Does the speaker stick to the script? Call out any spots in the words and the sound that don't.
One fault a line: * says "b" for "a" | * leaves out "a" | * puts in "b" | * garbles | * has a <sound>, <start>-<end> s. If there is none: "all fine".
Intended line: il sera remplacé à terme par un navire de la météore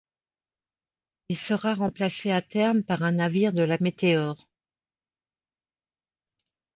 all fine